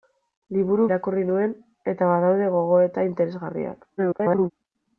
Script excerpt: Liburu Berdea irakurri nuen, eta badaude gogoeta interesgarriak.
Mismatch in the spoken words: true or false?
true